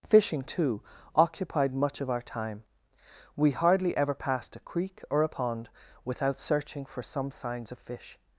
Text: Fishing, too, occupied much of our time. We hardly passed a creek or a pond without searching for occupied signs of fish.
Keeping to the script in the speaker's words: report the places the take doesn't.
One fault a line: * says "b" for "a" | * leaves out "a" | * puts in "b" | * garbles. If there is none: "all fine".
* puts in "ever"
* says "some" for "occupied"